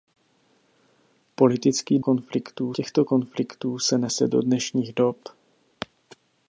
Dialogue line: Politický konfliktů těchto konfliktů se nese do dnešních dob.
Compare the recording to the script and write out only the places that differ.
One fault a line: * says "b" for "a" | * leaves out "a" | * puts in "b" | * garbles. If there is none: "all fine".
all fine